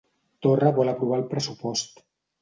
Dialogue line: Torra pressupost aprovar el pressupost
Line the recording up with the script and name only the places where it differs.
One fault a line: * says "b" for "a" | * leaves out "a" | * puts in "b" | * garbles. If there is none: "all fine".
* says "vol" for "pressupost"